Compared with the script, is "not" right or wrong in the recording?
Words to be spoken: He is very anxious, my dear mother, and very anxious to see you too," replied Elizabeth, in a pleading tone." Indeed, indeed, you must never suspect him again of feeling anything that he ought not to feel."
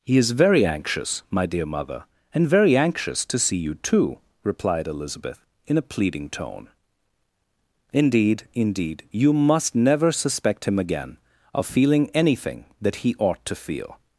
wrong